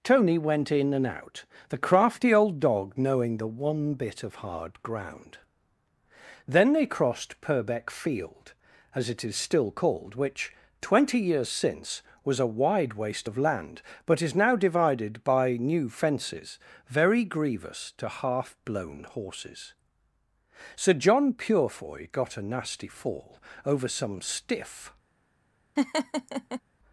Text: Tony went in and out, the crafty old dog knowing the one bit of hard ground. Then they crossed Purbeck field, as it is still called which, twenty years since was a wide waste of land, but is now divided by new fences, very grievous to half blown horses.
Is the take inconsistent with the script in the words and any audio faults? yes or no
yes